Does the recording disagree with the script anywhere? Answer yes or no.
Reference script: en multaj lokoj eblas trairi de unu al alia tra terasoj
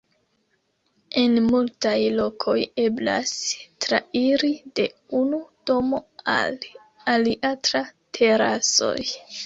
yes